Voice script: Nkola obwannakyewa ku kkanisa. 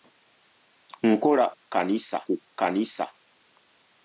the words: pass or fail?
fail